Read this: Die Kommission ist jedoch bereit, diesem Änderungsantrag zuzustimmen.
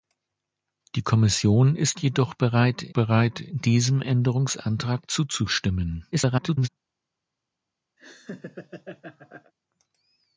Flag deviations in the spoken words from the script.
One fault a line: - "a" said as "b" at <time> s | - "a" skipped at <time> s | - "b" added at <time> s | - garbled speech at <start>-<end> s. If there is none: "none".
- "bereit" added at 2.9 s
- garbled speech at 6.1-6.7 s